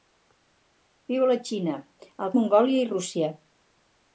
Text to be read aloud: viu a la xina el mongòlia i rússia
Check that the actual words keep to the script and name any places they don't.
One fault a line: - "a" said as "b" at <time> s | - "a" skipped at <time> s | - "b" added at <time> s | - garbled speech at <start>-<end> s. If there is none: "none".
none